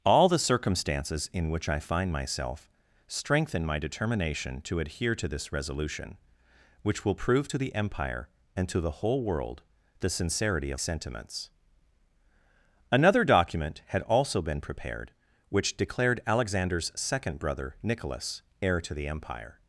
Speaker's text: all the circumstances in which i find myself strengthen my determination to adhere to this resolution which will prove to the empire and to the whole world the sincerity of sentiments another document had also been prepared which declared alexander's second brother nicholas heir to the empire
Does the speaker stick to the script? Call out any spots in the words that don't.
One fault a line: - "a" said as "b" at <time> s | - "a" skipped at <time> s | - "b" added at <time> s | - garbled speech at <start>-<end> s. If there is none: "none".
none